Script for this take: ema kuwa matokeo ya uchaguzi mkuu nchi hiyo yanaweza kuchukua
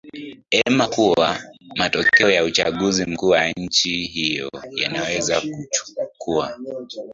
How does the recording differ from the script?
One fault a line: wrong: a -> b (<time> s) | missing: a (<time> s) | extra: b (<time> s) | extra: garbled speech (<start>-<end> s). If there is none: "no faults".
extra: wa (3.3 s)